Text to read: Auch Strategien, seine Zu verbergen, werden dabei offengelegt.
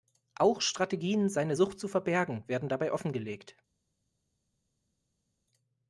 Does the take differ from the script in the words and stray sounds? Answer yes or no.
yes